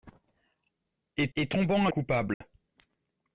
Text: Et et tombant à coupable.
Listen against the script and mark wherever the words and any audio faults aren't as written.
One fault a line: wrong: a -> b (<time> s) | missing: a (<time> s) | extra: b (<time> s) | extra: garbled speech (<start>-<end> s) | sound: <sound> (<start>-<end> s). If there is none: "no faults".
sound: dropout (2.3-2.4 s)